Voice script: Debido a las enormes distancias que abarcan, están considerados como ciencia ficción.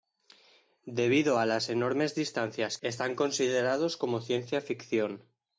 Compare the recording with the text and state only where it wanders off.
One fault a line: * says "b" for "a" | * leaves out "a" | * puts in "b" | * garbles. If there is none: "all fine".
* leaves out "que abarcan"